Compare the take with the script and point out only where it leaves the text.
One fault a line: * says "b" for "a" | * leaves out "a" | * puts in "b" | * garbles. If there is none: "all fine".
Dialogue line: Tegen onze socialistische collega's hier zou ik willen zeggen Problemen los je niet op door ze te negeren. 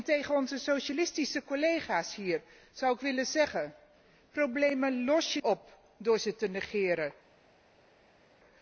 * leaves out "niet"